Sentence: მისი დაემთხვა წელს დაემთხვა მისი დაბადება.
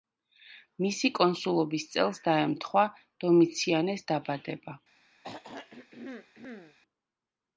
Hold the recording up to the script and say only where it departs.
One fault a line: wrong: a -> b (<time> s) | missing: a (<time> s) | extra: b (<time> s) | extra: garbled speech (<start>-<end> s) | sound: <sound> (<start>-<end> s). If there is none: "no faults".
wrong: დაემთხვა -> კონსულობის (1.2 s)
wrong: მისი -> დომიციანეს (3.2 s)
sound: throat clearing (5.2-6.8 s)